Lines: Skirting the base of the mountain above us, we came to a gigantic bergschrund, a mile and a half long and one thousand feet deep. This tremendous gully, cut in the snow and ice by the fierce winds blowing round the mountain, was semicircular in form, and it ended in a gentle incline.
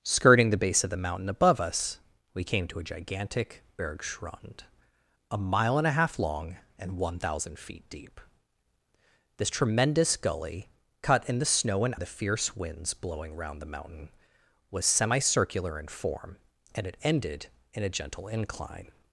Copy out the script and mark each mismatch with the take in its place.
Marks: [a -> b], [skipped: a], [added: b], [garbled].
Skirting the base of the mountain above us, we came to a gigantic bergschrund, a mile and a half long and one thousand feet deep. This tremendous gully, cut in the snow and [skipped: ice by] the fierce winds blowing round the mountain, was semicircular in form, and it ended in a gentle incline.